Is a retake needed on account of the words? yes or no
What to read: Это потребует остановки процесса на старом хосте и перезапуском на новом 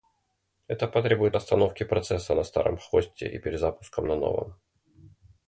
no